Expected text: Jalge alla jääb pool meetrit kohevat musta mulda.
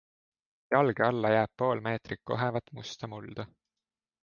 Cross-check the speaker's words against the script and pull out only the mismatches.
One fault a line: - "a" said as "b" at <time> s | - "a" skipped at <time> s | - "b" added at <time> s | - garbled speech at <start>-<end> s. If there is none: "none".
none